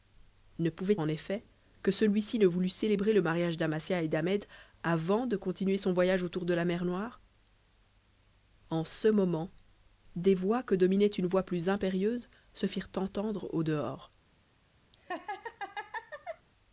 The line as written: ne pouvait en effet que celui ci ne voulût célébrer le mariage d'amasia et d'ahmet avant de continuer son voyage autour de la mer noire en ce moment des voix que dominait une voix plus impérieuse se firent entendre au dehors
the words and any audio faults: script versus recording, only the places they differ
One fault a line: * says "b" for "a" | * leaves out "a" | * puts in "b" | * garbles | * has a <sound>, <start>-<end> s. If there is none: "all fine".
* has a laugh, 14.9-16.5 s